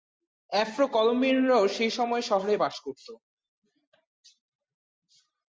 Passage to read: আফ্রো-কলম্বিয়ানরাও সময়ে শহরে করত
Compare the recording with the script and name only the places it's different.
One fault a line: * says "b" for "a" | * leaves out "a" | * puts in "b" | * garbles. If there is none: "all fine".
* puts in "সেই"
* puts in "বাস"